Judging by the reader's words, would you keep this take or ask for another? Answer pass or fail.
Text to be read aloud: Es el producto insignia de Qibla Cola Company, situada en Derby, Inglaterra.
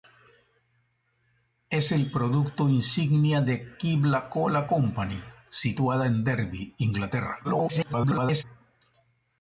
fail